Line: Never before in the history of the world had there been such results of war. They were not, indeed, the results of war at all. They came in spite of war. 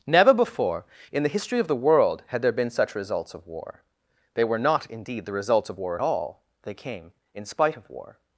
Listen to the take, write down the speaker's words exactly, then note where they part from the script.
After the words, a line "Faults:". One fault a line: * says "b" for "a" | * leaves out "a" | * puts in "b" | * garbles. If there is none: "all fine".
Never before in the history of the world had there been such results of war. They were not, indeed, the results of war at all. They came in spite of war.
Faults:
all fine